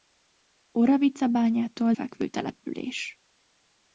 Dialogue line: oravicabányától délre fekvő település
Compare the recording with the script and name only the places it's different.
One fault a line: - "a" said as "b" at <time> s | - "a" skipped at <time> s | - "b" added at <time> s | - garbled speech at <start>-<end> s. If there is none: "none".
- "délre" skipped at 1.9 s